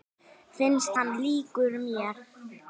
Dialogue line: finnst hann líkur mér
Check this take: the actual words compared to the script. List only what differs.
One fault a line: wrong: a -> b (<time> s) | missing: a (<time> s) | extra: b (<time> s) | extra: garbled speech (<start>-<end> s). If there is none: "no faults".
no faults